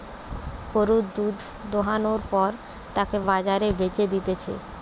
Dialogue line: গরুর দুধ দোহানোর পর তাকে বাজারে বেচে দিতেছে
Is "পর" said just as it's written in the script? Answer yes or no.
yes